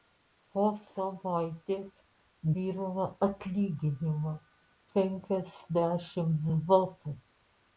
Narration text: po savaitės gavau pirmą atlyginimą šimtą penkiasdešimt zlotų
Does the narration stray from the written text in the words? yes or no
yes